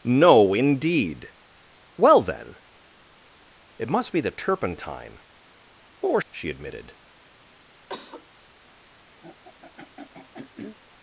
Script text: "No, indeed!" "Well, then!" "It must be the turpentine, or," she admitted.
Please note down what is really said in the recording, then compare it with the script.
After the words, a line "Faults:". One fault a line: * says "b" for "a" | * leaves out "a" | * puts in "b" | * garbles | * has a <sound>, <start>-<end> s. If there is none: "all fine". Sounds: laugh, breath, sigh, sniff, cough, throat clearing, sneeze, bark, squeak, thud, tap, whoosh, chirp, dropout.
"No, indeed!" "Well, then!" "It must be the turpentine, or," she admitted.
Faults:
* has a cough, 7.9-8.3 s
* has a throat clearing, 9.2-10.8 s